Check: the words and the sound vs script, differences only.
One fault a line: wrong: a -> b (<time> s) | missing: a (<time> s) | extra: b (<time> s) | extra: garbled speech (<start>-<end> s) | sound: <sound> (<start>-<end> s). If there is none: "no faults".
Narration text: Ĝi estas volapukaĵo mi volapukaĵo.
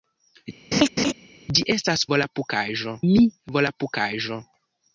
sound: laugh (0.7-1.1 s)